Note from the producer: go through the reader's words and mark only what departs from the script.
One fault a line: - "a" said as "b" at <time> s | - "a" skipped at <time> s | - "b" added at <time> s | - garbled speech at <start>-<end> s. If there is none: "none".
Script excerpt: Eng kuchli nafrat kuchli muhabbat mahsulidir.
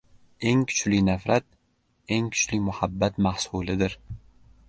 - "eng" added at 2.1 s